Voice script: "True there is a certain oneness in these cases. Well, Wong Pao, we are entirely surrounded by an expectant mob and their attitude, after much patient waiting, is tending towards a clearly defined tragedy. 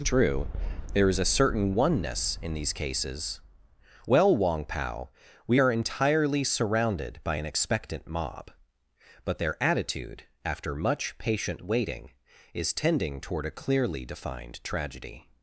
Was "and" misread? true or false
true